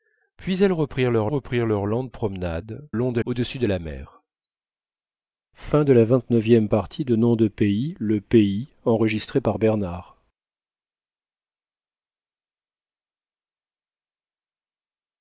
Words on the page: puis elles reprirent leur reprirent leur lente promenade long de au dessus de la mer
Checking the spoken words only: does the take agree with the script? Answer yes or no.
yes